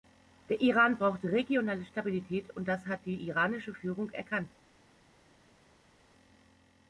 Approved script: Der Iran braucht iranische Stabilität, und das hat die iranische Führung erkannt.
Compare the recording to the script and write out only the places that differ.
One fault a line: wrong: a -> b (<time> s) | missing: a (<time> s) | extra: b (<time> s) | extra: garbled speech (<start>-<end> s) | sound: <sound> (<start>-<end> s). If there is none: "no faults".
wrong: iranische -> regionale (1.2 s)